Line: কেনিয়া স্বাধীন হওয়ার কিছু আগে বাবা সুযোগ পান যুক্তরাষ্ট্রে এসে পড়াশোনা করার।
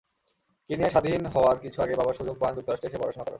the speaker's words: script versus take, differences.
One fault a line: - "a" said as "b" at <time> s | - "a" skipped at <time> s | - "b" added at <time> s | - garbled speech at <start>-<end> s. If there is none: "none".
none